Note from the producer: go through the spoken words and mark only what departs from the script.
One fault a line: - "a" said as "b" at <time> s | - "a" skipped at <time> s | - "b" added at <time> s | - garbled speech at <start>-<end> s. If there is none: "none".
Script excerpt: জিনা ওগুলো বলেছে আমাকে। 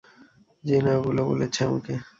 none